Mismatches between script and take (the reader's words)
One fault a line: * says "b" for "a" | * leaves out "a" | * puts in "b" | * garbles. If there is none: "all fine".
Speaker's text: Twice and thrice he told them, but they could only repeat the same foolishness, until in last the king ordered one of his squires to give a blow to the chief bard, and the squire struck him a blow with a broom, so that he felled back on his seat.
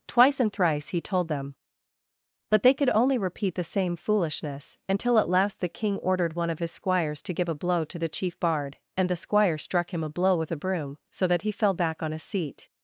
* says "at" for "in"
* says "fell" for "felled"